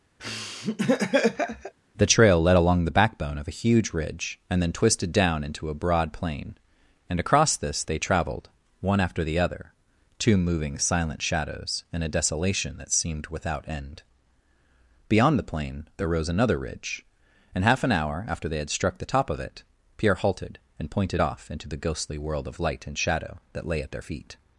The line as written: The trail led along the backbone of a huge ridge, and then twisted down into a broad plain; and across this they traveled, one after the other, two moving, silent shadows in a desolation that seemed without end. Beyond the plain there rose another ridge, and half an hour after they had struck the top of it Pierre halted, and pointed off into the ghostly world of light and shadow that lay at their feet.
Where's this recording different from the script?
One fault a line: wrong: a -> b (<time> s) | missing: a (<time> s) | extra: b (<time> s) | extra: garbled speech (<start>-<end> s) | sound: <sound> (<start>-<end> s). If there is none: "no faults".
sound: laugh (0.2-1.7 s)